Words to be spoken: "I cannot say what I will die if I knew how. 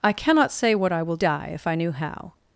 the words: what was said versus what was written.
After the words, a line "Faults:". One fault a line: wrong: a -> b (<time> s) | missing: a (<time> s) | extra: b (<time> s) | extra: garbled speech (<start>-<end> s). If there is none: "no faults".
"I cannot say what I will die if I knew how.
Faults:
no faults